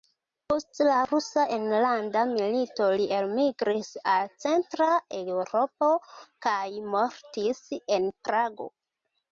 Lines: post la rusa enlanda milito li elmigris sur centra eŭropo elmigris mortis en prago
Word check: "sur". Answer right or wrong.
wrong